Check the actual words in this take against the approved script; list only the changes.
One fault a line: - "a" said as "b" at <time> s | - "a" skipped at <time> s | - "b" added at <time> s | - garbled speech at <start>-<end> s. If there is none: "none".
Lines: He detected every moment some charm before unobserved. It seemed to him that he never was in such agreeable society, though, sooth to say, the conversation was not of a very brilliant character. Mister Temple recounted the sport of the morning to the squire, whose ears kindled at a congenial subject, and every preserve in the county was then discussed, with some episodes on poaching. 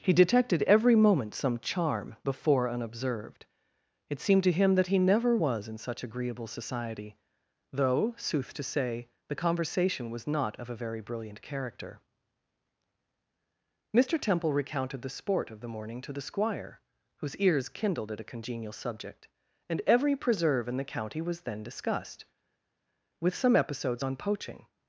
none